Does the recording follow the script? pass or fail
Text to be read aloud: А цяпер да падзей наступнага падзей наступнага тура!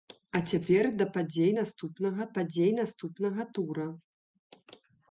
pass